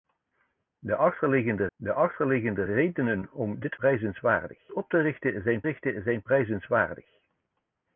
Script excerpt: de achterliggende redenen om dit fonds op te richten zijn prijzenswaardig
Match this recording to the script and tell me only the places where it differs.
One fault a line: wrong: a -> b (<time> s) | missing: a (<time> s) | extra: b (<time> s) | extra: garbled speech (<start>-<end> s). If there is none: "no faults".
extra: de achterliggende (1.8 s)
wrong: fonds -> prijzenswaardig (3.7 s)
extra: richten zijn (5.6 s)